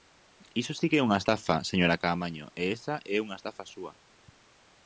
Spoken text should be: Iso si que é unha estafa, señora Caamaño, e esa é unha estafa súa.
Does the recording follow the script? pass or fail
pass